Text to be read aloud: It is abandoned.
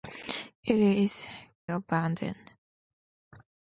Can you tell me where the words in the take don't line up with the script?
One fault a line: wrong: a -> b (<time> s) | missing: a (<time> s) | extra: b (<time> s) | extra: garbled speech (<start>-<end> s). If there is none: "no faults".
no faults